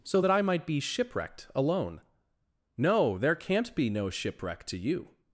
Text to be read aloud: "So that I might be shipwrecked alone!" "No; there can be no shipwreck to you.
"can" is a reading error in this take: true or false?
true